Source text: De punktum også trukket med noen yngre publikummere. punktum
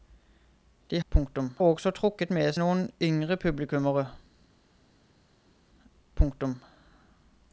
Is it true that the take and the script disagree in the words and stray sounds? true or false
false